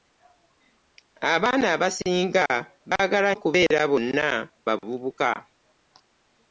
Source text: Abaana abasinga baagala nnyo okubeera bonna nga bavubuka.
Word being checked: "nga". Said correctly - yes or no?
no